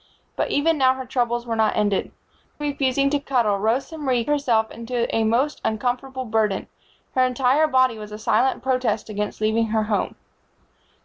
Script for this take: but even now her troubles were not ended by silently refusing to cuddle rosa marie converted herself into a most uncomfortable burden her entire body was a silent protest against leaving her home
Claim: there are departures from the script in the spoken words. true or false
true